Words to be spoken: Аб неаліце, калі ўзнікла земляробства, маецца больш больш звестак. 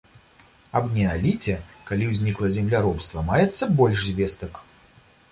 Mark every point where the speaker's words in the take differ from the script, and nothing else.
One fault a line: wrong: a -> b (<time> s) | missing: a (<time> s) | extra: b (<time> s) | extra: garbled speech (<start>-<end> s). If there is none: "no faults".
missing: больш (4.0 s)